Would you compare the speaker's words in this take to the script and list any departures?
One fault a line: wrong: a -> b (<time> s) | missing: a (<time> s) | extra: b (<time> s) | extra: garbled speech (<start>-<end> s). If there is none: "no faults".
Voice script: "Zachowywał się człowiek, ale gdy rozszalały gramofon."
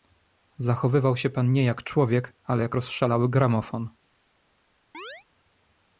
extra: pan nie jak (1.3 s)
wrong: gdy -> jak (2.6 s)